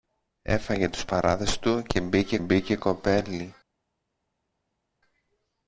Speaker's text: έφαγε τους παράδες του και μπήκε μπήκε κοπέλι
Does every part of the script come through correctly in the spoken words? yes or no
yes